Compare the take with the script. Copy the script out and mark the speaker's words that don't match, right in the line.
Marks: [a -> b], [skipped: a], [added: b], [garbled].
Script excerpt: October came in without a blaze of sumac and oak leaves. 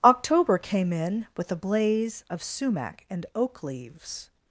October came in [without -> with] a blaze of sumac and oak leaves.